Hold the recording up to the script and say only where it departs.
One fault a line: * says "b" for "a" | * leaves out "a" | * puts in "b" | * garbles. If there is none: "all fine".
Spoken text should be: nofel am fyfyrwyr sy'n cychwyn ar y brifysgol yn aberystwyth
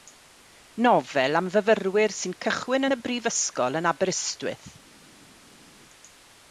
* says "yn" for "ar"